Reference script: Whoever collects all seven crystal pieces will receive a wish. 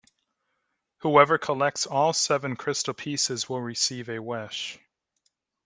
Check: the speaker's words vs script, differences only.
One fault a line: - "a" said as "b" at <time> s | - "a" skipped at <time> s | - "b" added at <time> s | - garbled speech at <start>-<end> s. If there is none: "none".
none